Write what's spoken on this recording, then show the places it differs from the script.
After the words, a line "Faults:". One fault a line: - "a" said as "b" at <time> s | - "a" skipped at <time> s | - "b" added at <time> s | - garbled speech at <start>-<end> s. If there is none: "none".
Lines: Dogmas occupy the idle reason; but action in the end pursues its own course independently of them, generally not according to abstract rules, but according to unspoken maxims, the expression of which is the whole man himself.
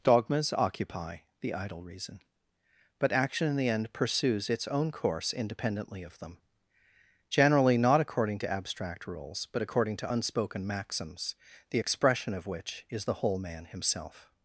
Dogmas occupy the idle reason; but action in the end pursues its own course independently of them, generally not according to abstract rules, but according to unspoken maxims, the expression of which is the whole man himself.
Faults:
none